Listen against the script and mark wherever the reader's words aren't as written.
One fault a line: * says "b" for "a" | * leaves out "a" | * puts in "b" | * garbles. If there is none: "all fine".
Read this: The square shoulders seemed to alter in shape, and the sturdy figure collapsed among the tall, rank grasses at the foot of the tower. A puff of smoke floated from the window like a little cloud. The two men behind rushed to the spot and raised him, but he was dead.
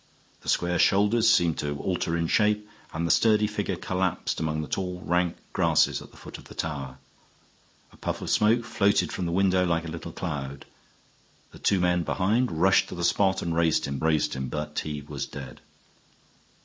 * puts in "raised him"